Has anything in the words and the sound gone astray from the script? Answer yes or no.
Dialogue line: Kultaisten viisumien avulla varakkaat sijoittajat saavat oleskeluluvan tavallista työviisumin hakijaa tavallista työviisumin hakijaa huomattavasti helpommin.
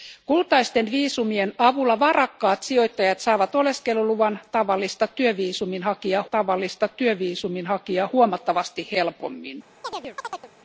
yes